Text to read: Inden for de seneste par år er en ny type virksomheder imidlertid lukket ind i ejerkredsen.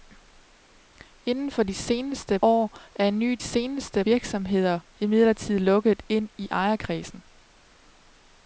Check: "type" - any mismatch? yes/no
yes